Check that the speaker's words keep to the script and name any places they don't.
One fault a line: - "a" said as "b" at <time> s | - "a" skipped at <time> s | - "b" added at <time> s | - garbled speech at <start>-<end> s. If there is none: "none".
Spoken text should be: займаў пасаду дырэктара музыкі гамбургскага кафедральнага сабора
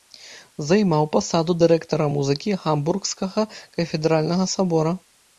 none